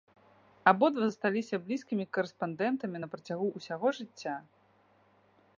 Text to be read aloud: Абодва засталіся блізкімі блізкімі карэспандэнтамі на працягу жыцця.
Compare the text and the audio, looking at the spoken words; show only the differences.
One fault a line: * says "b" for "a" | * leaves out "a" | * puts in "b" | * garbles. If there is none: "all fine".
* leaves out "блізкімі"
* puts in "ўсяго"